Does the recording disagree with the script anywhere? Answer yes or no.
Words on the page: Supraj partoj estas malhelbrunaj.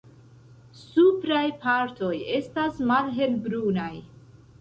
no